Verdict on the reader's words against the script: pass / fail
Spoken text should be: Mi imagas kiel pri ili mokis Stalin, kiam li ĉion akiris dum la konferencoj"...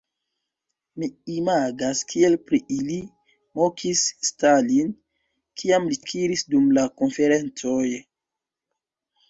fail